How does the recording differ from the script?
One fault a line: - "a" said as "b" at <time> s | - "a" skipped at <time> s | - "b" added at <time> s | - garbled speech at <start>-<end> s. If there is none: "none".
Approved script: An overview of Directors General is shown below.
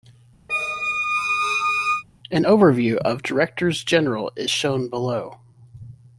none